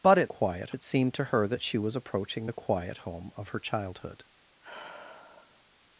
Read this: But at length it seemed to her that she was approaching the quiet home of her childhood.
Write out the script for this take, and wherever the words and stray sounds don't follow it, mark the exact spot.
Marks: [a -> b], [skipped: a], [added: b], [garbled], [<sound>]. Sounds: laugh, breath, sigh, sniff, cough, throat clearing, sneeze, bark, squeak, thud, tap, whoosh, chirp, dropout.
But at [length -> quiet] it seemed to her that she was approaching the quiet home of her childhood. [sigh]